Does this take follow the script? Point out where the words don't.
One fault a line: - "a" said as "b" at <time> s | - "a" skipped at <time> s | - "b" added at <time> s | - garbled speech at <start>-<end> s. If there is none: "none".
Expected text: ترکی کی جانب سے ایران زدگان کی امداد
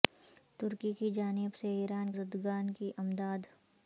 none